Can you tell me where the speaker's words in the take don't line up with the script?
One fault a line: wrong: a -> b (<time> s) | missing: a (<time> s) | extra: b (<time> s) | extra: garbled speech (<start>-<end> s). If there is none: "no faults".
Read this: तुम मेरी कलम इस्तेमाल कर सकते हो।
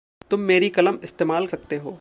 missing: कर (1.5 s)